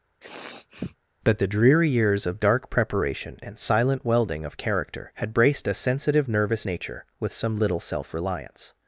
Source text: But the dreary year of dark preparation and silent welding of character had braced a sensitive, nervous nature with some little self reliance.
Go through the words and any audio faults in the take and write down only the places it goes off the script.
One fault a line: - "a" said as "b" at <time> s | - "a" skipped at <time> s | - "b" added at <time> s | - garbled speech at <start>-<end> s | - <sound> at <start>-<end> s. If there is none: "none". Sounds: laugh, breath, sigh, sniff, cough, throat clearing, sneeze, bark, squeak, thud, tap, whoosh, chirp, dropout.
- sniff at 0.2-1.0 s
- "year" said as "years" at 1.9 s